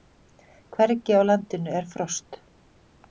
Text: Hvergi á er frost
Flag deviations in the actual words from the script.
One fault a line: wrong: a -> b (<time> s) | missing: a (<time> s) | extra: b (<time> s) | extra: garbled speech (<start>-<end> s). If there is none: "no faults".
extra: landinu (1.3 s)